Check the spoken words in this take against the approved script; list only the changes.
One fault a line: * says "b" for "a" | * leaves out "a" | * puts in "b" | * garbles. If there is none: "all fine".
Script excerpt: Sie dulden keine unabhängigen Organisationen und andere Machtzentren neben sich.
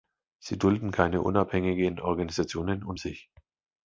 * leaves out "andere Machtzentren neben"